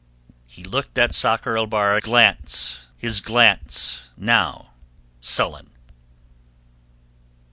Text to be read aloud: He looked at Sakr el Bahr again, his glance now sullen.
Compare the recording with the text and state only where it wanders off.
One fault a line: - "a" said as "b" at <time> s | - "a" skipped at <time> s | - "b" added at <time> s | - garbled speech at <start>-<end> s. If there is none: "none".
- "again" said as "glance" at 2.0 s